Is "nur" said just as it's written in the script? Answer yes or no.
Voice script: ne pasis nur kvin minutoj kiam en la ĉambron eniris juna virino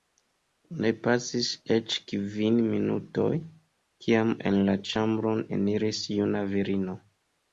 no